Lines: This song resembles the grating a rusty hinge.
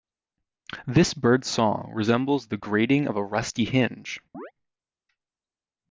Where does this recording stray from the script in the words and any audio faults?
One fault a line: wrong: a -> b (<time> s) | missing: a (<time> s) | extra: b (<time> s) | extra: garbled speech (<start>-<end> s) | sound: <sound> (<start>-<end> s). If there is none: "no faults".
extra: bird's (1.1 s)
extra: of (3.1 s)
sound: chirp (4.3-4.5 s)